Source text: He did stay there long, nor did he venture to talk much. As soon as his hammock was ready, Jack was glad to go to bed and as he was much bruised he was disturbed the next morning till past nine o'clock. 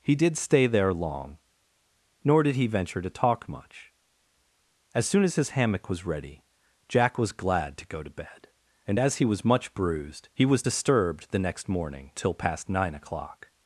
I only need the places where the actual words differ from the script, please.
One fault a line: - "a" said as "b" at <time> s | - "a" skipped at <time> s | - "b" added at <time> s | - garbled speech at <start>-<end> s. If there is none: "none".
none